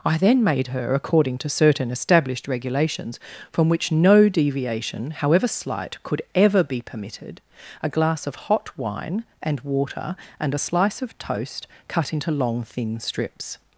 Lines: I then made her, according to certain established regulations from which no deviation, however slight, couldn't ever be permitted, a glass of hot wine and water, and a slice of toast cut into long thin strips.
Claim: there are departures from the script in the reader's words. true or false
true